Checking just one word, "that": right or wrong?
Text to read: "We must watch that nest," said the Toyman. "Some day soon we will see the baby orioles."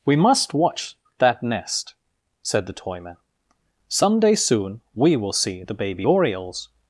right